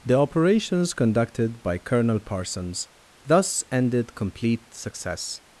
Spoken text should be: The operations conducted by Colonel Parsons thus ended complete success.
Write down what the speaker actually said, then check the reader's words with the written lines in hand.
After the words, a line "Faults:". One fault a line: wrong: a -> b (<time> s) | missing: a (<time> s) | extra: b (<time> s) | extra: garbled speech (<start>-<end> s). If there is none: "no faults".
The operations conducted by Colonel Parsons thus ended complete success.
Faults:
no faults